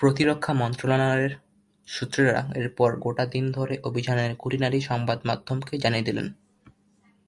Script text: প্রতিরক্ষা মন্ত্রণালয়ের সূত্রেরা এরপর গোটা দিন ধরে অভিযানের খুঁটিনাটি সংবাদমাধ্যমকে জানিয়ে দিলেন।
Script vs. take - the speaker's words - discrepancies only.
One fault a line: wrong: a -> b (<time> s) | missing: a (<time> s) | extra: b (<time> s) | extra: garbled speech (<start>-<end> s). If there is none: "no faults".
no faults